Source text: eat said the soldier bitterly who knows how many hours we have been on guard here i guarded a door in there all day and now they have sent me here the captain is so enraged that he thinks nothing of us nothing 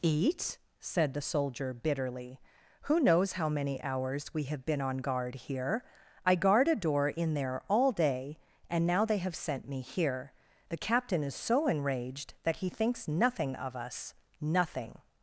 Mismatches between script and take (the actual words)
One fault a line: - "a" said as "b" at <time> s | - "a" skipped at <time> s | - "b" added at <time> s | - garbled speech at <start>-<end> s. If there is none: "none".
- "guarded" said as "guard" at 6.3 s